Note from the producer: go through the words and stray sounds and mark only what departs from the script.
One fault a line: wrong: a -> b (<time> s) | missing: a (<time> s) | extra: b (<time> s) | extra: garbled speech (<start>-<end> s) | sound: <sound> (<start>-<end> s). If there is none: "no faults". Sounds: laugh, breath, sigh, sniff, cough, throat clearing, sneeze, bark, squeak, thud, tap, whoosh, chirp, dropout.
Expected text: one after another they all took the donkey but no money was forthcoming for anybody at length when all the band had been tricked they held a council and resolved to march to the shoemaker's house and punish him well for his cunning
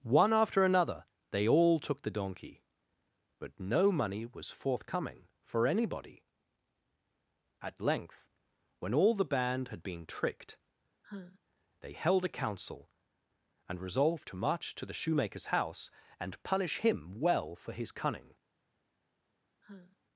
sound: sigh (11.0-11.4 s)
sound: sigh (19.6-20.0 s)